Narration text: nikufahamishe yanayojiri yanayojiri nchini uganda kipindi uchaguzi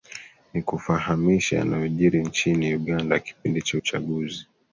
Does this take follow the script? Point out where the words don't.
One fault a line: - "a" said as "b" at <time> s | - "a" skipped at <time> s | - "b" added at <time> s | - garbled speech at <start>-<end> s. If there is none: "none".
- "yanayojiri" skipped at 2.2 s
- "cha" added at 3.6 s